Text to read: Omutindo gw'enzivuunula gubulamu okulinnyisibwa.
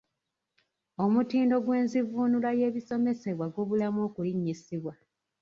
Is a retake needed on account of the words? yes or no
yes